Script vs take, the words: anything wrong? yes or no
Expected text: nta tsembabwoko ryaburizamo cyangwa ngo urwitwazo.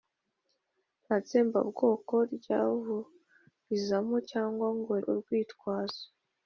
no